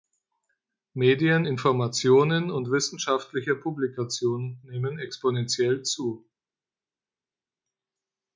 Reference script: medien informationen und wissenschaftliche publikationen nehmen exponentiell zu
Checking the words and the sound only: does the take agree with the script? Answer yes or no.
yes